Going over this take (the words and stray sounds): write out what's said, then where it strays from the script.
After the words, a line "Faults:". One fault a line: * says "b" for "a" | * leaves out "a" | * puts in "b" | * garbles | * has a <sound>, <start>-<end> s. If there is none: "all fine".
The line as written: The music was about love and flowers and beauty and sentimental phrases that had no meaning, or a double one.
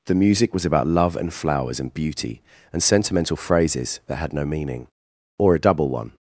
The music was about love and flowers and beauty and sentimental phrases that had no meaning, or a double one.
Faults:
all fine